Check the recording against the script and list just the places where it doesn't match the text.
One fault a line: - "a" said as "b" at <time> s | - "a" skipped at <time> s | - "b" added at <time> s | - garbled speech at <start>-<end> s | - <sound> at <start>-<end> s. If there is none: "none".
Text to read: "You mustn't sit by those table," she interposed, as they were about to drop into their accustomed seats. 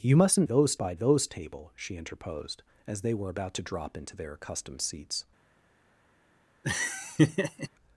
- "sit" said as "those" at 0.4 s
- laugh at 6.6-7.7 s